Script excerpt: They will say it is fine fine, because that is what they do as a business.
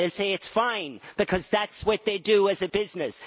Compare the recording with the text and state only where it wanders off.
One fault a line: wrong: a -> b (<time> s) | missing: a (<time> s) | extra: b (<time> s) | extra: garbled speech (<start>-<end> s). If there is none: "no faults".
missing: fine (1.0 s)